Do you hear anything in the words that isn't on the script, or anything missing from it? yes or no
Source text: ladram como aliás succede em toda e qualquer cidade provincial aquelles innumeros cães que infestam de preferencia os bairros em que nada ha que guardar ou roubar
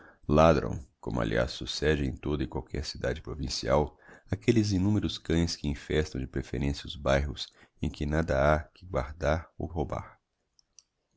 no